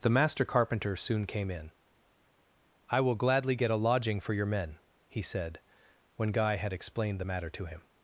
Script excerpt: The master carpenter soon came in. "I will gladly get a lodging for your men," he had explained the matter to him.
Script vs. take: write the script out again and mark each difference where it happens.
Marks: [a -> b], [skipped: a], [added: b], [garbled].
The master carpenter soon came in. "I will gladly get a lodging for your men," he [added: said when Guy] had explained the matter to him.